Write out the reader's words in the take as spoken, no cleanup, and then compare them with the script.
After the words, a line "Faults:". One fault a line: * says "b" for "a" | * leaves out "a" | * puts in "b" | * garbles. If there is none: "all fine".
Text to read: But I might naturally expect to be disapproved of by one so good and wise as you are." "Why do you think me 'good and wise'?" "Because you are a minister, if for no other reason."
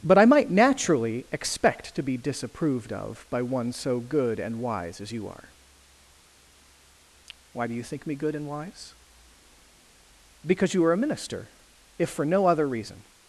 But I might naturally expect to be disapproved of by one so good and wise as you are." "Why do you think me 'good and wise'?" "Because you are a minister, if for no other reason."
Faults:
all fine